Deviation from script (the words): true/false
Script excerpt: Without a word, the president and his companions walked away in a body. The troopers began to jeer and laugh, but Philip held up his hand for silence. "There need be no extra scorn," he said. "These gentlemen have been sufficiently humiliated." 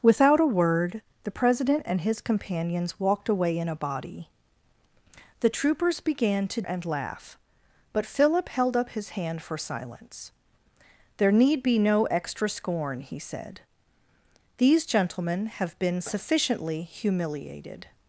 true